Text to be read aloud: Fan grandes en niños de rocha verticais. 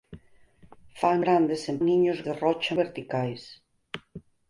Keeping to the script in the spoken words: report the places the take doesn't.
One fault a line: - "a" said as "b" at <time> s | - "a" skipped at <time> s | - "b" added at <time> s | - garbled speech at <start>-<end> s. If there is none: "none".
none